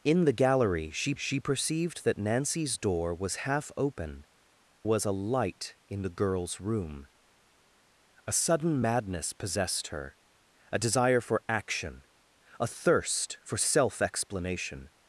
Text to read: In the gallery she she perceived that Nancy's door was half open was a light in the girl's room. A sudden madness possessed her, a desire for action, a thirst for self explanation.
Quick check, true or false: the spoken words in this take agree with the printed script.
true